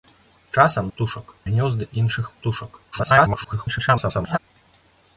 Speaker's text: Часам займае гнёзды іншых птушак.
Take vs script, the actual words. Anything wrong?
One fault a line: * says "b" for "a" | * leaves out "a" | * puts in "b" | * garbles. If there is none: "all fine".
* says "птушак" for "займае"
* garbles